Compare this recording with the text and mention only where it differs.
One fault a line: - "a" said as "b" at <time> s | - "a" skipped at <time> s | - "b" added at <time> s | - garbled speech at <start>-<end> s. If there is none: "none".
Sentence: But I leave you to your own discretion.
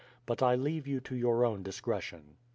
none